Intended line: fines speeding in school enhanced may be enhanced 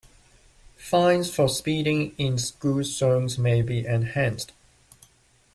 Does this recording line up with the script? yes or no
no